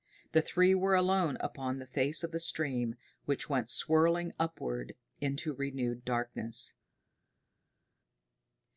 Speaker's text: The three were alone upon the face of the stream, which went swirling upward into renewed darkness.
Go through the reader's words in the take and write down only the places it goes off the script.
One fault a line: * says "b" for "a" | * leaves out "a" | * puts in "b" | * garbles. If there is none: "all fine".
all fine